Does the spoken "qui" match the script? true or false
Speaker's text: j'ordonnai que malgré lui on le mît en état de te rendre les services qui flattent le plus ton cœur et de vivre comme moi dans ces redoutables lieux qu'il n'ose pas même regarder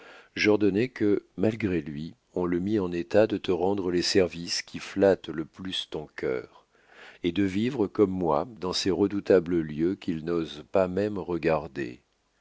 true